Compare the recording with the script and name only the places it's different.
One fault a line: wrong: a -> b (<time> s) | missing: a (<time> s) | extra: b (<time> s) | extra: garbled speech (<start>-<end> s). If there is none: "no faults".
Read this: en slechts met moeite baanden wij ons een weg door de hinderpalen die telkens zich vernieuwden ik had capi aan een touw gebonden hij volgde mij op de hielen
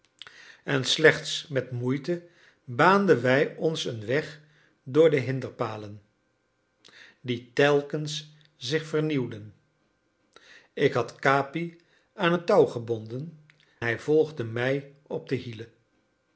no faults